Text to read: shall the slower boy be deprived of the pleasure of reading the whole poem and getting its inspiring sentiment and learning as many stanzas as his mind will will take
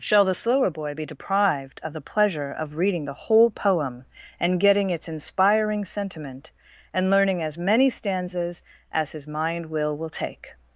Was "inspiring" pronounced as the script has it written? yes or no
yes